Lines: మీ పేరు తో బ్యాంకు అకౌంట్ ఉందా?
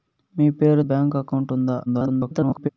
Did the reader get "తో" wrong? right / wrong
wrong